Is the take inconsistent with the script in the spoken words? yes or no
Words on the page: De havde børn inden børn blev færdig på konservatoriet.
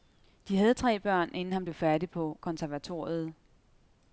yes